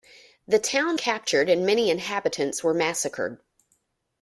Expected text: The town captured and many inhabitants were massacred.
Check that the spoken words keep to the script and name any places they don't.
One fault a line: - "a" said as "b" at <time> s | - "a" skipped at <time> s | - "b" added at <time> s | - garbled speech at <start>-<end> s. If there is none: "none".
none